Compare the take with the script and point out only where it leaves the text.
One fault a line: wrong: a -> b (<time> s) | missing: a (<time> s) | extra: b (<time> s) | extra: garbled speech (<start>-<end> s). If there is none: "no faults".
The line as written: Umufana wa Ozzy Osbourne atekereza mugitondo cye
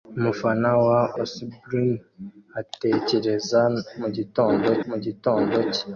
missing: Ozzy (1.0 s)
extra: mugitondo (4.9 s)